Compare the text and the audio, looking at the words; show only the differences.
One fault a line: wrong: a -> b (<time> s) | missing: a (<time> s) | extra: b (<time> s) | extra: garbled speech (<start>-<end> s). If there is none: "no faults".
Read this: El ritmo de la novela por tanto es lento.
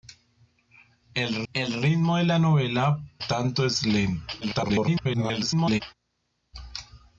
extra: el (1.5 s)
missing: por (3.0 s)
extra: garbled speech (4.4-5.8 s)